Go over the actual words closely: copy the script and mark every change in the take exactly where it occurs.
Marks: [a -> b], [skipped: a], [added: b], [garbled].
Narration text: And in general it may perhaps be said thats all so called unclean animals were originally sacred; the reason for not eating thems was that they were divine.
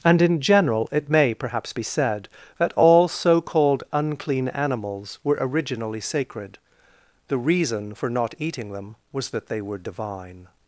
And in general it may perhaps be said [thats -> that] all so called unclean animals were originally sacred; the reason for not eating [thems -> them] was that they were divine.